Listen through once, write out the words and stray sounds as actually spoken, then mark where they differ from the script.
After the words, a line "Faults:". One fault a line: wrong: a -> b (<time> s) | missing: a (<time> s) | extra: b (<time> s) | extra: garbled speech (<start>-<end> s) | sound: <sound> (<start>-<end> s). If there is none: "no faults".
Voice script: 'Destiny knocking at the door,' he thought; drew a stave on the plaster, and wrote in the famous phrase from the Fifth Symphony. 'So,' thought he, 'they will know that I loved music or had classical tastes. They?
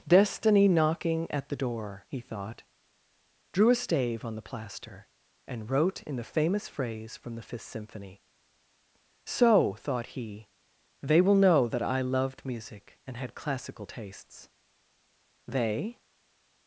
'Destiny knocking at the door,' he thought; drew a stave on the plaster, and wrote in the famous phrase from the Fifth Symphony. 'So,' thought he, 'they will know that I loved music and had classical tastes. They?
Faults:
wrong: or -> and (13.1 s)